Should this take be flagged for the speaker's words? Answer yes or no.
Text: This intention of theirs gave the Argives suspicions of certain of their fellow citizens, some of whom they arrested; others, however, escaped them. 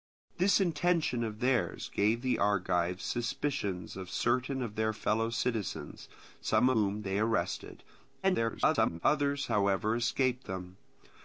yes